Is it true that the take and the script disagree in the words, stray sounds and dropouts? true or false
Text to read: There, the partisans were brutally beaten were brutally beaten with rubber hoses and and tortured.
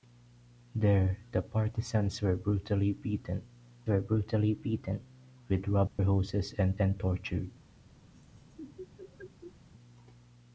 true